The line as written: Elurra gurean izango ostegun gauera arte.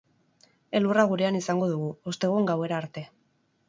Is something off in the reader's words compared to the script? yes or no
yes